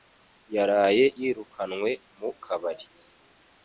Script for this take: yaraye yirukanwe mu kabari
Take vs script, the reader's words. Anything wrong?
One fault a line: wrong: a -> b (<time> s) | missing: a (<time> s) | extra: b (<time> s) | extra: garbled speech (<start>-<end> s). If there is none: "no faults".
no faults